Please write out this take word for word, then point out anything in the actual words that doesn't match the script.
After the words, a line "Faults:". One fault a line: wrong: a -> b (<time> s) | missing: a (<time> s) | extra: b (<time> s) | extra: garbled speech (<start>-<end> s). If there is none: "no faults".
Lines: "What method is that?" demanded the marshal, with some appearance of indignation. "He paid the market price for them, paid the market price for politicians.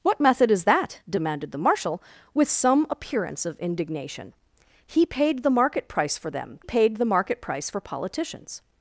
"What method is that?" demanded the marshal, with some appearance of indignation. "He paid the market price for them, paid the market price for politicians.
Faults:
no faults